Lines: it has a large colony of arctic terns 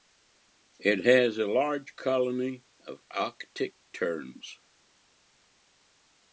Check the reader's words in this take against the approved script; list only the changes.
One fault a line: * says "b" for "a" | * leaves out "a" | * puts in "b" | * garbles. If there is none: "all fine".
all fine